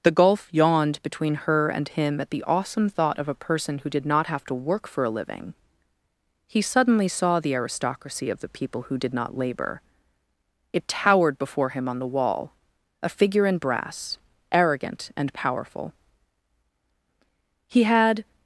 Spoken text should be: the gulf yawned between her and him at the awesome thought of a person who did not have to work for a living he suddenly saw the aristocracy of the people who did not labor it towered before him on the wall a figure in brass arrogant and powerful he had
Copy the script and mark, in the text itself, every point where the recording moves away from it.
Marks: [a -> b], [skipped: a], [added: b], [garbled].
the gulf yawned between her and him at the awesome thought of a person who did not have to work for a living he suddenly saw the aristocracy of the people who did not labor it towered before him on the wall a figure in brass arrogant and powerful he had